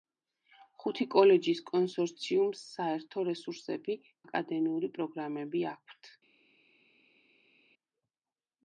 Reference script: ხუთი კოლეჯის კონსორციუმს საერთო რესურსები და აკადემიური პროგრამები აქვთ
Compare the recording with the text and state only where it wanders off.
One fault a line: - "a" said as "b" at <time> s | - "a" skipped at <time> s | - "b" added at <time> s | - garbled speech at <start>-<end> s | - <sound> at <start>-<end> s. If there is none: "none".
- "და" skipped at 4.0 s